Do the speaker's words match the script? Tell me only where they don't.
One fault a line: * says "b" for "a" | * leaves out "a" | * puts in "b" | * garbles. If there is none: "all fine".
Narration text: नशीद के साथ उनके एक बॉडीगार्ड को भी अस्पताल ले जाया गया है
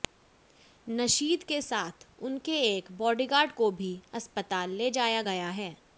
all fine